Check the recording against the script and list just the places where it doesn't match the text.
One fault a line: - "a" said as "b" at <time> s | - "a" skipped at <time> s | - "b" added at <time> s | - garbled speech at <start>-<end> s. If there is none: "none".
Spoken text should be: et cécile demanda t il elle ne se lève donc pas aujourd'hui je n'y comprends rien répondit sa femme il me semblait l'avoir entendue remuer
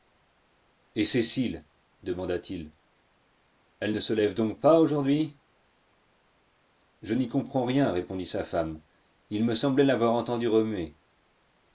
none